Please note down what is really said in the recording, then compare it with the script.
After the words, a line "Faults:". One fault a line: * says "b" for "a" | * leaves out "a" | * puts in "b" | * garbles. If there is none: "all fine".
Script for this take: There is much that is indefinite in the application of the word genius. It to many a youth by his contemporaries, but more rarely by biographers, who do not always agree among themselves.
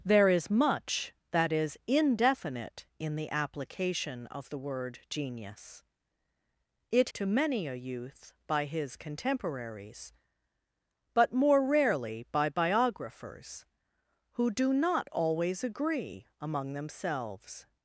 There is much that is indefinite in the application of the word genius. It to many a youth by his contemporaries, but more rarely by biographers, who do not always agree among themselves.
Faults:
all fine